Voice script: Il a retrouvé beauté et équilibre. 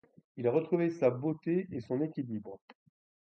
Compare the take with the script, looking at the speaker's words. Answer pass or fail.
fail